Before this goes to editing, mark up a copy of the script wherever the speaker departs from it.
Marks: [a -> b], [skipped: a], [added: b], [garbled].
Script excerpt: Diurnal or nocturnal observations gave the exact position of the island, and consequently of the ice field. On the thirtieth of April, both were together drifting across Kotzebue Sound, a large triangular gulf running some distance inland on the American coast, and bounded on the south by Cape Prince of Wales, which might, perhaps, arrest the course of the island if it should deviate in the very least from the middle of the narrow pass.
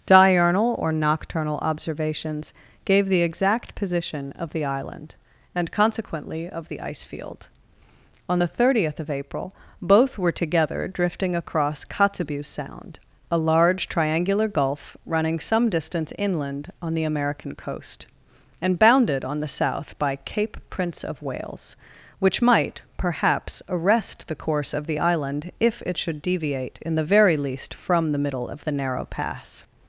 Diurnal or nocturnal observations gave the exact position of the island, and consequently of the ice field. On the thirtieth of April, both were together drifting across Kotzebue Sound, a large triangular gulf running some distance inland on the American coast, and bounded on the south by Cape Prince of Wales, which might, perhaps, arrest the course of the island if it should deviate in the very least from the middle of the narrow pass.